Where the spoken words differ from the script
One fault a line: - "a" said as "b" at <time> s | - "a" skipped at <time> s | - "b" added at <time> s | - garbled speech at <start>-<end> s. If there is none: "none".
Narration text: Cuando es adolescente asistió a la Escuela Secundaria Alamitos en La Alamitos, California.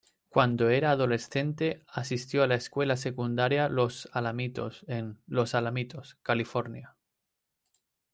- "es" said as "era" at 0.7 s
- "Los" added at 3.7 s
- "La" said as "Los" at 5.3 s